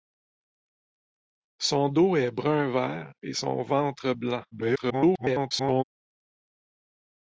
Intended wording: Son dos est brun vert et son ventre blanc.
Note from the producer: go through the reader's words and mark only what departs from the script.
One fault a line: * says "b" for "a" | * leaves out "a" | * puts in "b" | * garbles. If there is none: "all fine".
* garbles